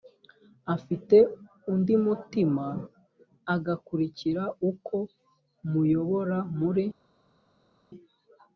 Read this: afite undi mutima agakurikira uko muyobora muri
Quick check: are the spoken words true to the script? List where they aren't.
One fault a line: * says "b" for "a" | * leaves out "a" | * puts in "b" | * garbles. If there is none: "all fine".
all fine